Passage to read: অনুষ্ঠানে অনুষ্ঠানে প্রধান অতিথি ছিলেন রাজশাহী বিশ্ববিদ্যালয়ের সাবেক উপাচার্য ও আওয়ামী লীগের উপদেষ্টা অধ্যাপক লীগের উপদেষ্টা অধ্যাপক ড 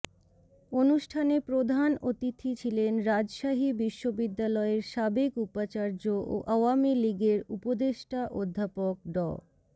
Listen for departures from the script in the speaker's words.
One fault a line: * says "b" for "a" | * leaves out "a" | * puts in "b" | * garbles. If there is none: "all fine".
* leaves out "অনুষ্ঠানে"
* leaves out "লীগের উপদেষ্টা অধ্যাপক"